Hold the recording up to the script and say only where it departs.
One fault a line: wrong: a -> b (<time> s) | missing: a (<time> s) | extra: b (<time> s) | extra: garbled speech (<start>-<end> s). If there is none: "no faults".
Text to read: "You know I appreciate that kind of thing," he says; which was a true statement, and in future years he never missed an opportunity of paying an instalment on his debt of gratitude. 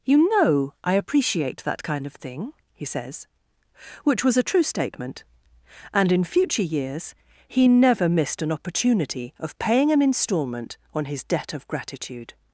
no faults